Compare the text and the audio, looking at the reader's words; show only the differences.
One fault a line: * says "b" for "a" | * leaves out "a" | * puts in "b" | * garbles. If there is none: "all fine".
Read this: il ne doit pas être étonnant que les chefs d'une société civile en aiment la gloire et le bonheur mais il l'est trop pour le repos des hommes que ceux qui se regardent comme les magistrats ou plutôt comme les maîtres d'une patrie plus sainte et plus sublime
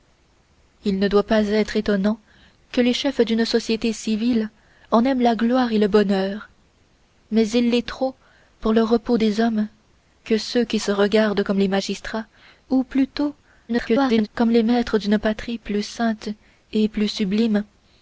* garbles